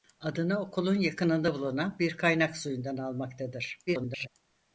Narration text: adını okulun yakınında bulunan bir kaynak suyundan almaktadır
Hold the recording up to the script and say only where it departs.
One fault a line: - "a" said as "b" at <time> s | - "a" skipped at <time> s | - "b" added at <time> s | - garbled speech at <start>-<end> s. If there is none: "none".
- garbled speech at 3.9-4.3 s